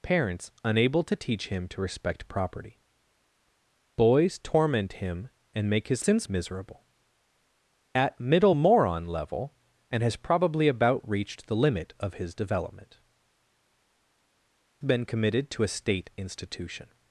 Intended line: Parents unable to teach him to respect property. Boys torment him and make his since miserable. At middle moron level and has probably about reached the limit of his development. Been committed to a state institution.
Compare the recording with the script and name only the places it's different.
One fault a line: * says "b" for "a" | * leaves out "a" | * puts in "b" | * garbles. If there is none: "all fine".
all fine